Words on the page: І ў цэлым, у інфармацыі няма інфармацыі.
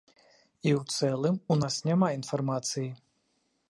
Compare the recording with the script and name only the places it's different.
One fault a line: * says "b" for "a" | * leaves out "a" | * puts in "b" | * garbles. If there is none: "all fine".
* says "нас" for "інфармацыі"